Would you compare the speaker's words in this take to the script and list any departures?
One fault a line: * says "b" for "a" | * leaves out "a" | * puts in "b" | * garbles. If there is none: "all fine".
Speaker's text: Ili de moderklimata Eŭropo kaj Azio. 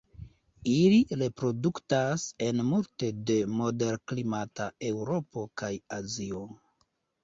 * puts in "reproduktas en multe"